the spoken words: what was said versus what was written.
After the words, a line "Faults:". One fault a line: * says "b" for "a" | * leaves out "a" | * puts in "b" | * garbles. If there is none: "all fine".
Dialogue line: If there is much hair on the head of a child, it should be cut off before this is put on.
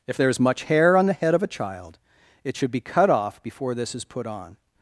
If there is much hair on the head of a child, it should be cut off before this is put on.
Faults:
all fine